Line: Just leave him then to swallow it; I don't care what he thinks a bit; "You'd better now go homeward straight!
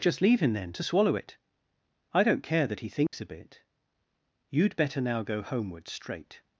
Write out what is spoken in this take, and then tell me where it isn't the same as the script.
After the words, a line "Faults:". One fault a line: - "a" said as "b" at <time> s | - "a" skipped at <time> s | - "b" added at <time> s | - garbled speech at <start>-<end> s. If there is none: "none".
Just leave him then to swallow it; I don't care that he thinks a bit; "You'd better now go homeward straight!
Faults:
- "what" said as "that" at 2.7 s